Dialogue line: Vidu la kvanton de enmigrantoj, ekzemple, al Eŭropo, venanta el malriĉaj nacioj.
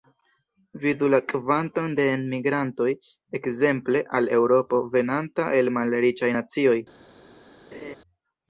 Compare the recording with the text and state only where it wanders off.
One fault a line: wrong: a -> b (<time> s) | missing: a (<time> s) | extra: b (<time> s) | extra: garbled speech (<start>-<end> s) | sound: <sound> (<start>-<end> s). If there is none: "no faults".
sound: laugh (7.7-8.0 s)